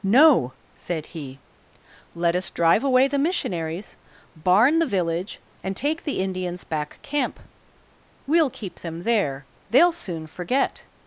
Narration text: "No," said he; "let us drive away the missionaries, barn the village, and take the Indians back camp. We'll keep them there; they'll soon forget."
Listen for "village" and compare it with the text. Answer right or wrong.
right